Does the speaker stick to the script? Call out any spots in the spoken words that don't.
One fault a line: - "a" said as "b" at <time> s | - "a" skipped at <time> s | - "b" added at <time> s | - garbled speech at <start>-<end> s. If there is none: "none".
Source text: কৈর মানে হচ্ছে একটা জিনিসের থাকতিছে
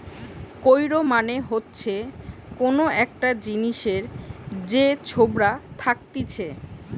- "কোন" added at 2.6 s
- "যে ছোবড়া" added at 4.7 s